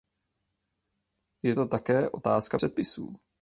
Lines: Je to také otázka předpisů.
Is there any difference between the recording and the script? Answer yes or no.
no